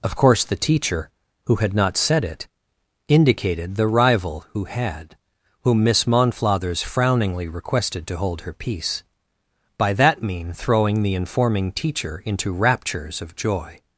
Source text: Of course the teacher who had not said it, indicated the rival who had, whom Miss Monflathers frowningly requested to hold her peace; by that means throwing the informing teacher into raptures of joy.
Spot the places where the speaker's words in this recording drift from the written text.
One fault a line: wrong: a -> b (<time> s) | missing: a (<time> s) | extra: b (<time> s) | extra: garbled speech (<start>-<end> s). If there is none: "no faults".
wrong: means -> mean (10.2 s)